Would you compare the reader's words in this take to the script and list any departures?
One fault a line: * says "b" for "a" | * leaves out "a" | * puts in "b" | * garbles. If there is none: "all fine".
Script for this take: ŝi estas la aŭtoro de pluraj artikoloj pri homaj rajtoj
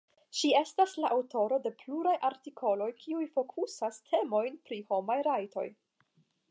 * puts in "kiuj fokusas temojn"